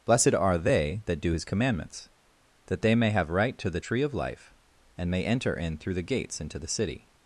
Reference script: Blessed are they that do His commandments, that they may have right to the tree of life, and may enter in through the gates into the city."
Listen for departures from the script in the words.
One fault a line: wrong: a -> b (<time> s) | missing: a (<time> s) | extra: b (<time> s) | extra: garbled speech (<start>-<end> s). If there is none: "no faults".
no faults